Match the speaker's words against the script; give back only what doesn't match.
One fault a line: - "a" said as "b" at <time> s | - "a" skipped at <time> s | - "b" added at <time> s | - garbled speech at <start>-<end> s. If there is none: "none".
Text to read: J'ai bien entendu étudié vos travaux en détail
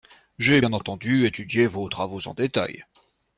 none